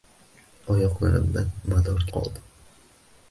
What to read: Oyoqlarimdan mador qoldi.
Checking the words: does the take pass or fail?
pass